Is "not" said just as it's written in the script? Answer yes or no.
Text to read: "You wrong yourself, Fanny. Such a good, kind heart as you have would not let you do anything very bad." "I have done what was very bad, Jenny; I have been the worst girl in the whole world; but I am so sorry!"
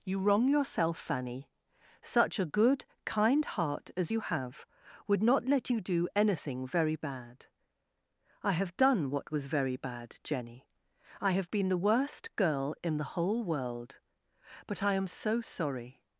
yes